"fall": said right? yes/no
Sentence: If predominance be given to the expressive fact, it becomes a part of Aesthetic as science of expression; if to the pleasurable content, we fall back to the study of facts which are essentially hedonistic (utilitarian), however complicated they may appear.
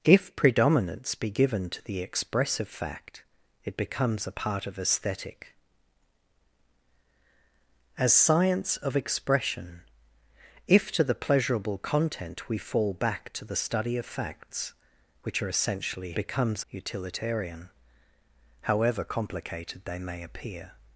yes